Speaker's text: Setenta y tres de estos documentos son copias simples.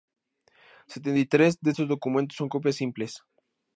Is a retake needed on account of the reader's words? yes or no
no